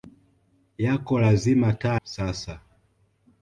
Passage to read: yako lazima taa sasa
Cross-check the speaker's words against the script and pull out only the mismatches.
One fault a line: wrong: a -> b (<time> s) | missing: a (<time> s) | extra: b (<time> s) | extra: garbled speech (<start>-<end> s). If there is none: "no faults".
no faults